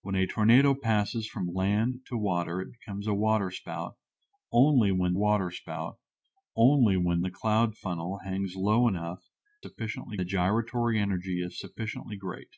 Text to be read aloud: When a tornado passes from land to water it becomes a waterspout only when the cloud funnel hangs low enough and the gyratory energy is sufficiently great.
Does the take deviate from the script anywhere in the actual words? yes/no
yes